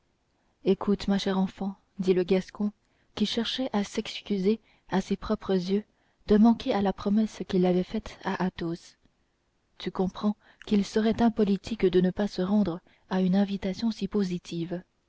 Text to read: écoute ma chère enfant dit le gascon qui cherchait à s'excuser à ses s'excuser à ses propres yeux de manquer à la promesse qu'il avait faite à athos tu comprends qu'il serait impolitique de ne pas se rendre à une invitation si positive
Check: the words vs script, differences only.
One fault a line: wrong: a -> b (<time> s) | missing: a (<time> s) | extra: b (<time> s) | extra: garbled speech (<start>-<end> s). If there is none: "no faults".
missing: s'excuser à ses (5.2 s)